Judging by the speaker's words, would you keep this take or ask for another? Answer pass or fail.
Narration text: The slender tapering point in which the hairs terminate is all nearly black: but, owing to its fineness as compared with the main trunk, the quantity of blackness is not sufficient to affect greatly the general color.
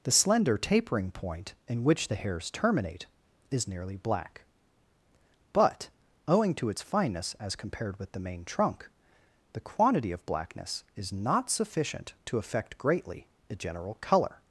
fail